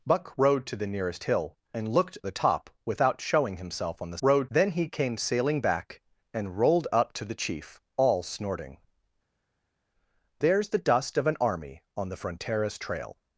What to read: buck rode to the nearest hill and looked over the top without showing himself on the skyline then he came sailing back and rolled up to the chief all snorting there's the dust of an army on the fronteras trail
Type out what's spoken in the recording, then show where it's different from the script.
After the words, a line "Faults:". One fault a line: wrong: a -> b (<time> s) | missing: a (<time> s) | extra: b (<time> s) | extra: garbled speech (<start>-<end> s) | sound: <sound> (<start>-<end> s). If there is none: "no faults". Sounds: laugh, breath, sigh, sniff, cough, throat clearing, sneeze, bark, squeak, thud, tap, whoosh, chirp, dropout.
buck rode to the nearest hill and looked the top without showing himself on the rode then he came sailing back and rolled up to the chief all snorting there's the dust of an army on the fronteras trail
Faults:
missing: over (2.2 s)
wrong: skyline -> rode (4.2 s)